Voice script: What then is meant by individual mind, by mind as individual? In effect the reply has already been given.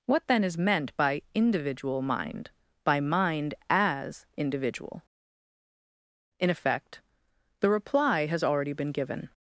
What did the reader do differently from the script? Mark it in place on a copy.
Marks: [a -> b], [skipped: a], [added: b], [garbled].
What then is meant by individual mind, by mind as individual? In effect the reply has already been given.